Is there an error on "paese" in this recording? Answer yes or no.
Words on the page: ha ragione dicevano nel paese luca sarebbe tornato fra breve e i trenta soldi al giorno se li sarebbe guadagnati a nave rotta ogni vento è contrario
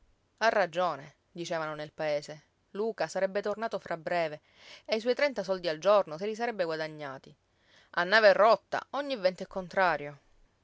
no